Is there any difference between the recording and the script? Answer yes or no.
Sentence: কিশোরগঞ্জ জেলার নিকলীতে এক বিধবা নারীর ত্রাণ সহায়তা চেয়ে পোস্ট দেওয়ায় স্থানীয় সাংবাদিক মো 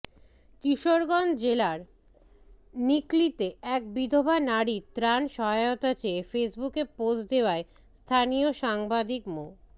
yes